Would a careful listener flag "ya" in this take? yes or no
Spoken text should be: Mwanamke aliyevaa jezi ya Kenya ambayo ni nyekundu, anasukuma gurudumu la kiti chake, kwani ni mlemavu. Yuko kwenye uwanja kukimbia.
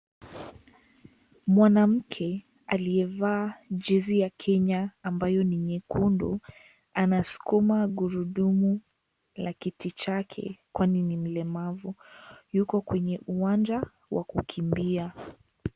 no